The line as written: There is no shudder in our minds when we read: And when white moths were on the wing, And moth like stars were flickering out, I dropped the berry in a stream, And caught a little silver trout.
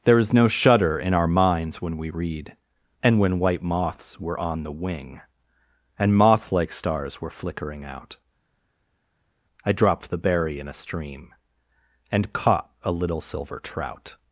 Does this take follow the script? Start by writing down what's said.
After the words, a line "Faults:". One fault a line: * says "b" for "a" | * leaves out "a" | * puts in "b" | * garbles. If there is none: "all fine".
There is no shudder in our minds when we read: And when white moths were on the wing, And moth like stars were flickering out, I dropped the berry in a stream, And caught a little silver trout.
Faults:
all fine